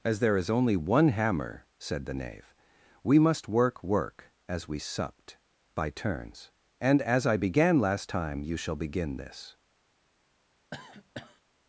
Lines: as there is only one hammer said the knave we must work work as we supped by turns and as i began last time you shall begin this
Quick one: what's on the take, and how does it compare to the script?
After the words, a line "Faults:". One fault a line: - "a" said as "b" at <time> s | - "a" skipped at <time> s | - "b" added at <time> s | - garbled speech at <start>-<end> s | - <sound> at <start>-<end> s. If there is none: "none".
as there is only one hammer said the knave we must work work as we supped by turns and as i began last time you shall begin this
Faults:
- cough at 10.7-11.4 s